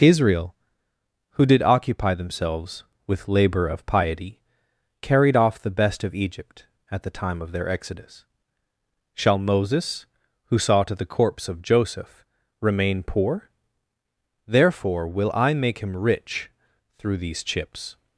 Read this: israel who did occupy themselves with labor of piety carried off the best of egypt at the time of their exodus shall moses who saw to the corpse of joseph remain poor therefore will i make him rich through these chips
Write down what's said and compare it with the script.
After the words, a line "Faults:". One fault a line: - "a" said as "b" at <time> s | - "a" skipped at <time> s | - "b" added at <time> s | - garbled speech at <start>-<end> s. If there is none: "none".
israel who did occupy themselves with labor of piety carried off the best of egypt at the time of their exodus shall moses who saw to the corpse of joseph remain poor therefore will i make him rich through these chips
Faults:
none